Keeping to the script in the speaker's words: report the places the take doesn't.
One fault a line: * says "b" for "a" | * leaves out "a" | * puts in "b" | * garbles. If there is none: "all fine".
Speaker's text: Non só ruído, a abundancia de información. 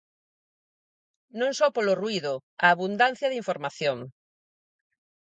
* puts in "polo"